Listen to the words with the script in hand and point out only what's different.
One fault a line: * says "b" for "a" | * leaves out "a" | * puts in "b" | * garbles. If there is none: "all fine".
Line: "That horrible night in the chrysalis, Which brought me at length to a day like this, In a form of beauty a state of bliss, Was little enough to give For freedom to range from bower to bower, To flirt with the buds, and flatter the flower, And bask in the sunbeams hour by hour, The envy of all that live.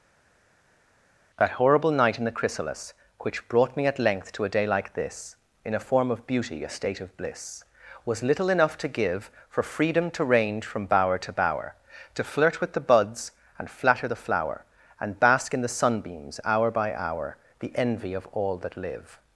all fine